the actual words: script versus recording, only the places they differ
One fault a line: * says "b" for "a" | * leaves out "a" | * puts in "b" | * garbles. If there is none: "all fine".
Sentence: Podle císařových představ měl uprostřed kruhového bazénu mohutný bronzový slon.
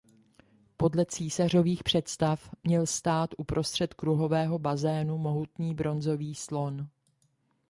* puts in "stát"